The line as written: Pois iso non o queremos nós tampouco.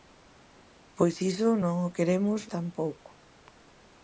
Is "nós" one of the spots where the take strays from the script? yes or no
yes